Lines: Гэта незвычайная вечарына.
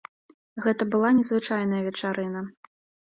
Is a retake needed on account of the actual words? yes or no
yes